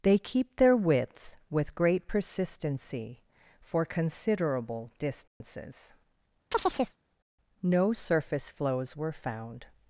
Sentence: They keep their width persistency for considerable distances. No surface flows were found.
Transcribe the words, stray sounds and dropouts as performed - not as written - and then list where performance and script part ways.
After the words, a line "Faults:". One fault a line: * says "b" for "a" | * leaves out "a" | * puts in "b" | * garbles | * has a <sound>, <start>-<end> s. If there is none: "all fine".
They keep their width with great persistency for considerable distances. No surface flows were found.
Faults:
* puts in "with great"
* has a dropout, 5.3-5.4 s
* has a chirp, 6.5-7.0 s